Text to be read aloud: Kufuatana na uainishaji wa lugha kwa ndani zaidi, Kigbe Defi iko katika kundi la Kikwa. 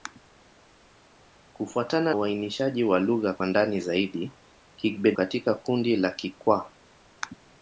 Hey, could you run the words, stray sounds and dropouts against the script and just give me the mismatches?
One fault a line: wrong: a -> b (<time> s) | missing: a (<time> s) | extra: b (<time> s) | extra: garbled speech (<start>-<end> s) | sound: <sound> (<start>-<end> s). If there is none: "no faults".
missing: na (2.1 s)
missing: Defi iko (5.1 s)